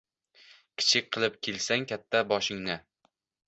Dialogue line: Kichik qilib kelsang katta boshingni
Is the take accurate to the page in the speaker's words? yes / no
yes